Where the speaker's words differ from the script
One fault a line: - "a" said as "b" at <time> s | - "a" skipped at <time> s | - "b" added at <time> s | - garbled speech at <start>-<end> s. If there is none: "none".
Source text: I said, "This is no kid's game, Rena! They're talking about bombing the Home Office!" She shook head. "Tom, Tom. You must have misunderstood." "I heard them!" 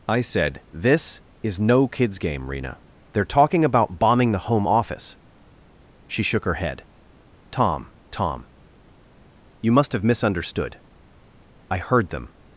- "her" added at 6.5 s